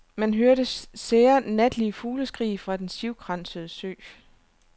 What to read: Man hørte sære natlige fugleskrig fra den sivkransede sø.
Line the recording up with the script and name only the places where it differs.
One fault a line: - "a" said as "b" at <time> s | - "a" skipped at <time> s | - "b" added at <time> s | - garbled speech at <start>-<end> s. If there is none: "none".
none